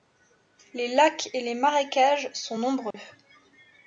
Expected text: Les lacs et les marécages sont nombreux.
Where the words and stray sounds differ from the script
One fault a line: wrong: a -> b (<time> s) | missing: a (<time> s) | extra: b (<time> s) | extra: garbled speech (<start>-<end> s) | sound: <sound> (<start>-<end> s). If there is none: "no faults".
sound: dropout (2.9-2.9 s)